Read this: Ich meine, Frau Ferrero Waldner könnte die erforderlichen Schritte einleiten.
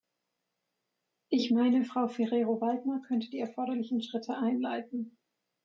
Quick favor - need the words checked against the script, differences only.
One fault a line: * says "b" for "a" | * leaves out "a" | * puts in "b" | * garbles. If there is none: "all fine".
all fine